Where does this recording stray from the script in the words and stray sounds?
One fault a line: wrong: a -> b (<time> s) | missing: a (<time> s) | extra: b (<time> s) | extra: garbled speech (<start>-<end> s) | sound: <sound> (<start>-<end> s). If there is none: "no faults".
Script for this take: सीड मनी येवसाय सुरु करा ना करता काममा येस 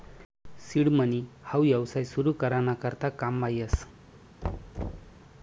extra: हाऊ (1.4 s)
sound: thud (4.4-5.2 s)